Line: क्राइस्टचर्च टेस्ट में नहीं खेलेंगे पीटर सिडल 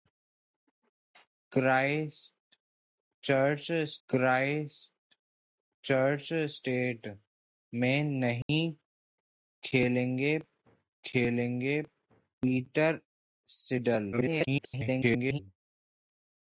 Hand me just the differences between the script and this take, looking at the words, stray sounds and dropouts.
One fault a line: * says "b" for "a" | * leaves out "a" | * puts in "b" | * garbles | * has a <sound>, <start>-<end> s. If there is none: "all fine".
* puts in "क्राइस्टचर्च"
* has a dropout, 8.4-8.5 s
* puts in "खेलेंगे"
* garbles